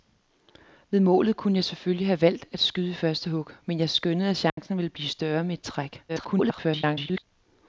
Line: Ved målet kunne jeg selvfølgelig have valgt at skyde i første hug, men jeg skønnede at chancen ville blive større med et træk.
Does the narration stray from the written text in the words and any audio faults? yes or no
yes